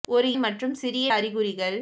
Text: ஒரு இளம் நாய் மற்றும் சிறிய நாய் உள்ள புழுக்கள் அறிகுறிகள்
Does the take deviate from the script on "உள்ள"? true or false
true